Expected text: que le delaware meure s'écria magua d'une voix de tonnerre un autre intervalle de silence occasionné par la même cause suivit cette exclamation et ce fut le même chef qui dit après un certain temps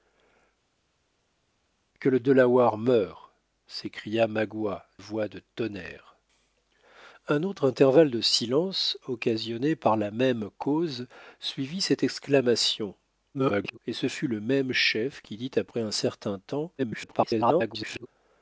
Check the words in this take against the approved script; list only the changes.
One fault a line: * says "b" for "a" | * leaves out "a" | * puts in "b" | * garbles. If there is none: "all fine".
* leaves out "d'une"
* garbles
* garbles